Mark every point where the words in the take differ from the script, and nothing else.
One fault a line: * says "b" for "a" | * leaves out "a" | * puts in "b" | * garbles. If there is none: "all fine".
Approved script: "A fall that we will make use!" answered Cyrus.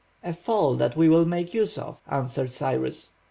* puts in "of"